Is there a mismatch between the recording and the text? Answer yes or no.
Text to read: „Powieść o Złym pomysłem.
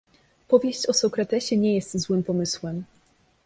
yes